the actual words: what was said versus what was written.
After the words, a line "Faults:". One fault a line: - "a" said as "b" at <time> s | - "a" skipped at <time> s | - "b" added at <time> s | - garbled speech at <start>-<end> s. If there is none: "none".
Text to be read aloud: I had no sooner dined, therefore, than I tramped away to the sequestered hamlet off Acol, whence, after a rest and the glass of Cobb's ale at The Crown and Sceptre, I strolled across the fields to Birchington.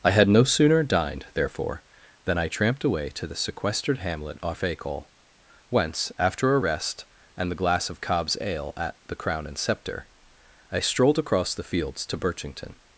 I had no sooner dined, therefore, than I tramped away to the sequestered hamlet off Acol, whence, after a rest and the glass of Cobb's ale at The Crown and Sceptre, I strolled across the fields to Birchington.
Faults:
none